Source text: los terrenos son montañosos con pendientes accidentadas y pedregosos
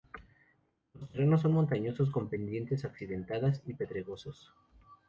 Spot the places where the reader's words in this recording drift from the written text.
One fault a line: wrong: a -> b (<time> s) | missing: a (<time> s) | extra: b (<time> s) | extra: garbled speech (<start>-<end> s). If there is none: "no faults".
no faults